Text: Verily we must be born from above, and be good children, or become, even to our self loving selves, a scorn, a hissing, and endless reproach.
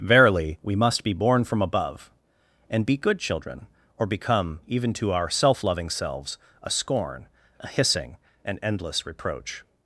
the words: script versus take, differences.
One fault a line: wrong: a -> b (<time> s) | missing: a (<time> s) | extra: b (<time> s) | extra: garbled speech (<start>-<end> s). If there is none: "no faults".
no faults